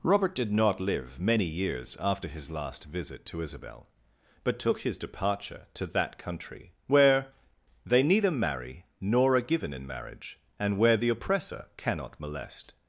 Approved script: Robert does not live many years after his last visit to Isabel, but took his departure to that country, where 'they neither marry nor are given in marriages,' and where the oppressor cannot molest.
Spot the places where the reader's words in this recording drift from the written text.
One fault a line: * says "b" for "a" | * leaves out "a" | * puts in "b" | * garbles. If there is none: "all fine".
* says "did" for "does"
* says "marriage" for "marriages"